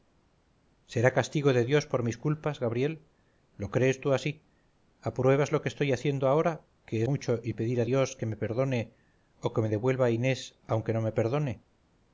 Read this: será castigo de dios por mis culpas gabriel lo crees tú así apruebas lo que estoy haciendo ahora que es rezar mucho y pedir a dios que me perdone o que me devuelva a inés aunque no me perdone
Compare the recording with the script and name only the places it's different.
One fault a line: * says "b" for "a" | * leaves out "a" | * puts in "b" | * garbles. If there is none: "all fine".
* leaves out "es rezar"